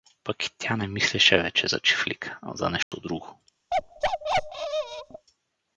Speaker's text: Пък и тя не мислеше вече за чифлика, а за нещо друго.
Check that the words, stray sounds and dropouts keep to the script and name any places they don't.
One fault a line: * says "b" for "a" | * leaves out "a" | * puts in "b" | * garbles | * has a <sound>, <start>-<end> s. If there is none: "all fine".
* has a dropout, 2.8-2.9 s
* has a bark, 3.7-5.3 s